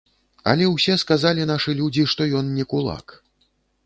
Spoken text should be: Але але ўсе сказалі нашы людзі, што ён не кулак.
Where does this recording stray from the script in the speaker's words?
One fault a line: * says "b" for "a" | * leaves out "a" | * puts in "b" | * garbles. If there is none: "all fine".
* leaves out "але"